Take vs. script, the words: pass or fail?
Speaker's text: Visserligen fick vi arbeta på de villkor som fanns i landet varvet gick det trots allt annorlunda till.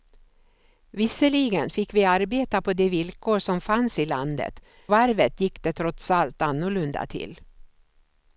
pass